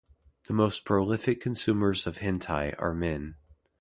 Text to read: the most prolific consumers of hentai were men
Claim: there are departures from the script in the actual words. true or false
true